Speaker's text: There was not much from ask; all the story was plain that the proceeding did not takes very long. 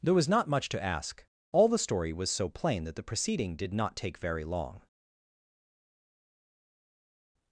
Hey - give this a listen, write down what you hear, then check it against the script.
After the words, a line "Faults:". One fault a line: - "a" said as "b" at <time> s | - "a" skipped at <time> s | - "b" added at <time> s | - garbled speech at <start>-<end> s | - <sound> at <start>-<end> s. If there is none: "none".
There was not much to ask; all the story was so plain that the proceeding did not take very long.
Faults:
- "from" said as "to" at 0.7 s
- "so" added at 2.3 s
- "takes" said as "take" at 4.0 s